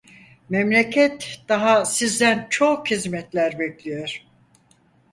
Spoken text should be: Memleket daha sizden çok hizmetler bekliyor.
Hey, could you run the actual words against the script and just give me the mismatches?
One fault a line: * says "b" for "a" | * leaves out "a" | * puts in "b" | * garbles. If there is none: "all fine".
all fine